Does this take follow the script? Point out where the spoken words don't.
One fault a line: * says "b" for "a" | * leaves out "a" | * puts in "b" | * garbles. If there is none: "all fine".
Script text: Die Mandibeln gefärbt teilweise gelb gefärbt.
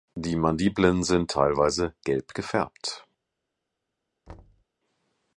* says "sind" for "gefärbt"